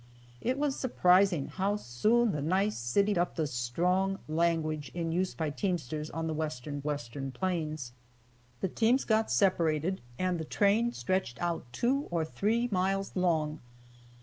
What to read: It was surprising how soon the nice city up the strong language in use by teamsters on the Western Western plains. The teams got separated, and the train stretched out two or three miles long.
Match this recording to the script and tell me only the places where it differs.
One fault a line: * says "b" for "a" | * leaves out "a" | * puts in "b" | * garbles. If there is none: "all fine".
all fine